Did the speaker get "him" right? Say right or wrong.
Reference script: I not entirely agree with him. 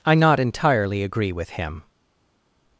right